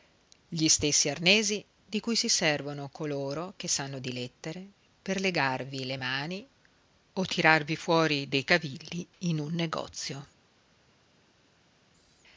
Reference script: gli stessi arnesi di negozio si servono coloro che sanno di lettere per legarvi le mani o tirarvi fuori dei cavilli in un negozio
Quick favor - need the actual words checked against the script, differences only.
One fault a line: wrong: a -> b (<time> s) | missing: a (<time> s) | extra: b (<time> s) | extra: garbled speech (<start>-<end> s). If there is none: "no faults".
wrong: negozio -> cui (2.0 s)